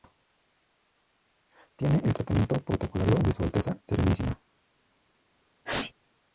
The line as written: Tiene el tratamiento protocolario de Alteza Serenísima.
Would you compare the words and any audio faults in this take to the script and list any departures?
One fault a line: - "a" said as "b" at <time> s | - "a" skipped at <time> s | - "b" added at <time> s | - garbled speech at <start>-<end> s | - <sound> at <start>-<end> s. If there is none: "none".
- "Su" added at 3.3 s
- sneeze at 5.6-5.9 s